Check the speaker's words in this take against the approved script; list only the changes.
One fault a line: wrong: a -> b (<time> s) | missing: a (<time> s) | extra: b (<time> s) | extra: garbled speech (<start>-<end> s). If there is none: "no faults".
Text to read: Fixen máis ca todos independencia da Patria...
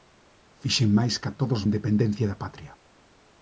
no faults